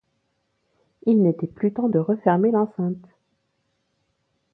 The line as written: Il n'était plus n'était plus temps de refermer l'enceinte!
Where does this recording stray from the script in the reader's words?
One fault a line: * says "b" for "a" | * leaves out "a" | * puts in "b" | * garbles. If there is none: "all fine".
* leaves out "n'était plus"